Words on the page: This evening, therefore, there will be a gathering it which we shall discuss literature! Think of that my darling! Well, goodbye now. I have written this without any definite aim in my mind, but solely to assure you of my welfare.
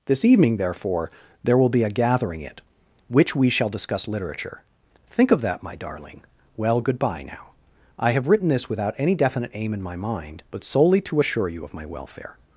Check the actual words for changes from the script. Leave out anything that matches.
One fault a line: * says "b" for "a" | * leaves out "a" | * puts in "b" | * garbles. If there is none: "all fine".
all fine